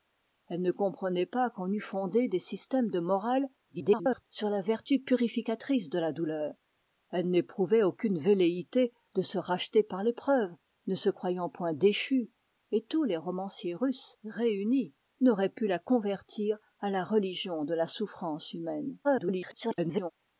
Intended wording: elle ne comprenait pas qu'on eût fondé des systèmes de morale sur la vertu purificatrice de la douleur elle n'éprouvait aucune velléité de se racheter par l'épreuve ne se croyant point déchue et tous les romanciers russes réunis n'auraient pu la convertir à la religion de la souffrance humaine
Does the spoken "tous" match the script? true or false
true